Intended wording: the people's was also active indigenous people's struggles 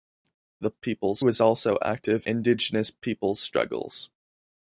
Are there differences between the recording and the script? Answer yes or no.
no